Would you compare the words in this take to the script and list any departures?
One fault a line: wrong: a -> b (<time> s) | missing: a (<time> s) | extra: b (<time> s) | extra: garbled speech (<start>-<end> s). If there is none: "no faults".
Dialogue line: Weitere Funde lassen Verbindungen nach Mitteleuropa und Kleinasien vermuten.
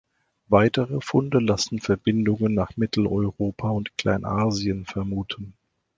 no faults